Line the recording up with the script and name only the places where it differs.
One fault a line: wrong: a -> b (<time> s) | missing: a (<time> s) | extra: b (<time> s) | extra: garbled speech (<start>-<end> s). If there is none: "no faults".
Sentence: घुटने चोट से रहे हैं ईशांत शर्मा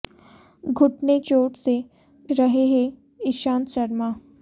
no faults